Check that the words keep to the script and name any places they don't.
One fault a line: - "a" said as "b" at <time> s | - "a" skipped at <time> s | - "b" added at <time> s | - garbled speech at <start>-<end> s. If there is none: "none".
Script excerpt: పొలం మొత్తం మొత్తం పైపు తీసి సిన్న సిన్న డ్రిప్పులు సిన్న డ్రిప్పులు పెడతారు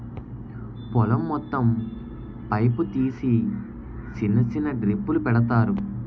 - "మొత్తం" skipped at 1.6 s
- "సిన్న డ్రిప్పులు" skipped at 5.2 s